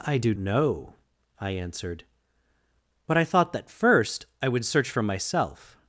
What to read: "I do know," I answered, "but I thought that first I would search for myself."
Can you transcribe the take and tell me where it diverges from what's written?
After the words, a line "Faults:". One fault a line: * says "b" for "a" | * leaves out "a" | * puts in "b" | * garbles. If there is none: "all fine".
"I do know," I answered, "but I thought that first I would search for myself."
Faults:
all fine